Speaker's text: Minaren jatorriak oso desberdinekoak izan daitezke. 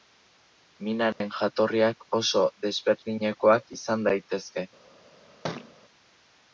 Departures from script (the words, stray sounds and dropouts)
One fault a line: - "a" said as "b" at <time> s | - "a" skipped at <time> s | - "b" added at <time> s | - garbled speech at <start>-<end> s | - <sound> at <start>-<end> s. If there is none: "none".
- dropout at 1.1-1.2 s
- thud at 5.4-5.7 s